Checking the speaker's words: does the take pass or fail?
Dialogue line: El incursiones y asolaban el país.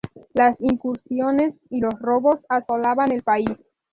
fail